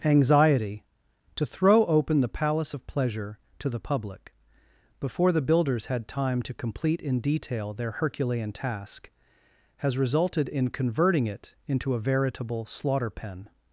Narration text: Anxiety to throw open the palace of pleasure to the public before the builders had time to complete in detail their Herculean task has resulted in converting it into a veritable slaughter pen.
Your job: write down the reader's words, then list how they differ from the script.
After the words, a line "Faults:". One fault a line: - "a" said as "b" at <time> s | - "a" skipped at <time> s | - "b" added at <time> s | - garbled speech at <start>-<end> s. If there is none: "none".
Anxiety to throw open the palace of pleasure to the public before the builders had time to complete in detail their Herculean task has resulted in converting it into a veritable slaughter pen.
Faults:
none